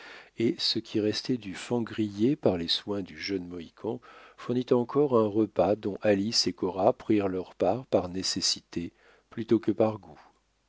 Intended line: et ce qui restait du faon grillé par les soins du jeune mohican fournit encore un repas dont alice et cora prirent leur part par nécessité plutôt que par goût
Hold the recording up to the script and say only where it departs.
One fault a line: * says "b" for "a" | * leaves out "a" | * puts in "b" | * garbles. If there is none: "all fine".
all fine